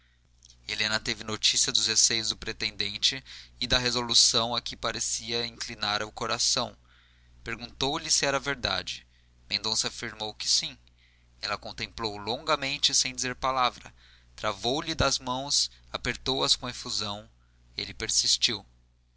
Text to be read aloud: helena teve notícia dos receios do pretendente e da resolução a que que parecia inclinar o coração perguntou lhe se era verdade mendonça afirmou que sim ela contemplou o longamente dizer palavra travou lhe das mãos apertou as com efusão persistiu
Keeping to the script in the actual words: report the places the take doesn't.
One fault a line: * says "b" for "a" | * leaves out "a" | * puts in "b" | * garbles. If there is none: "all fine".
* leaves out "que"
* puts in "sem"
* puts in "ele"